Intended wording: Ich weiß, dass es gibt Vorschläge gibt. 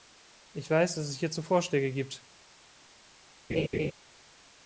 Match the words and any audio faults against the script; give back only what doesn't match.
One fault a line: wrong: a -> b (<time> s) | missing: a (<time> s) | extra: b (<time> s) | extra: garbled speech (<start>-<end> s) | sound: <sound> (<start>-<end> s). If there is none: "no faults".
wrong: gibt -> hierzu (1.2 s)
sound: laugh (3.5-3.9 s)